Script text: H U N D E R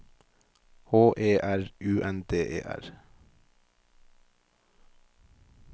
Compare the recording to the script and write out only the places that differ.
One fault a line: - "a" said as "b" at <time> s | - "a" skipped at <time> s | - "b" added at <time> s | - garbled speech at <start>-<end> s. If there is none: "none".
- "E R" added at 1.1 s